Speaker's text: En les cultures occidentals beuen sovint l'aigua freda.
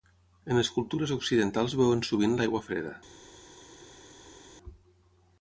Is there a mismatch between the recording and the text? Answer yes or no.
no